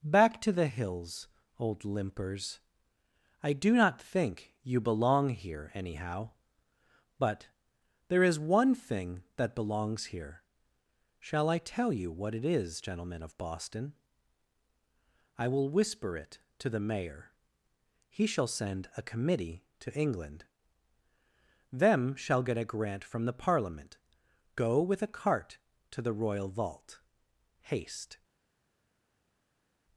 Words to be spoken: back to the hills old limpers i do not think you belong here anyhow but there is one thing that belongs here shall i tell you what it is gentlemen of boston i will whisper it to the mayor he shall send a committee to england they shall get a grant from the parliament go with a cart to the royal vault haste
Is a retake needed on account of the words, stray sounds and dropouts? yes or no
yes